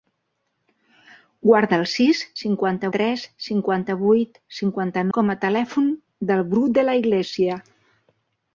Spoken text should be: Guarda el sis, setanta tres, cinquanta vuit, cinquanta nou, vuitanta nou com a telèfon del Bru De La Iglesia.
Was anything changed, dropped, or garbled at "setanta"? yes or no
yes